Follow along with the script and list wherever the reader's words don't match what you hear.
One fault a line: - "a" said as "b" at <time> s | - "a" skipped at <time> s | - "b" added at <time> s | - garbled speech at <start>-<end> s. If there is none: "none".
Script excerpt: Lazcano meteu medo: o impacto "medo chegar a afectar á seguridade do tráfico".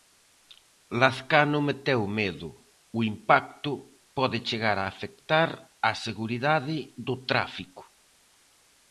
- "medo" said as "pode" at 4.2 s